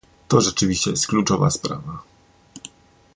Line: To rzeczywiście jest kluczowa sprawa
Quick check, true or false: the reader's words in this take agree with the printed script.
true